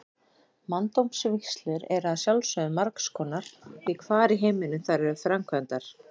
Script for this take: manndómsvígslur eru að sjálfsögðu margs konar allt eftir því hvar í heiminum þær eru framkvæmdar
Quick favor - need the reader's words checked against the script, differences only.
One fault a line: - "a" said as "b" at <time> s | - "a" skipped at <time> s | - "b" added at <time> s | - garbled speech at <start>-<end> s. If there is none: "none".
- "allt eftir" skipped at 3.5 s